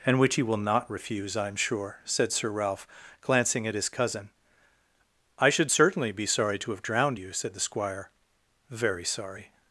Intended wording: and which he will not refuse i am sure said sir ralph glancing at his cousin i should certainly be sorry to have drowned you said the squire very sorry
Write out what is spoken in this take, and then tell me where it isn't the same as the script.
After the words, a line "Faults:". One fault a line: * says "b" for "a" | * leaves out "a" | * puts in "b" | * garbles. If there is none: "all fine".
and which he will not refuse i am sure said sir ralph glancing at his cousin i should certainly be sorry to have drowned you said the squire very sorry
Faults:
all fine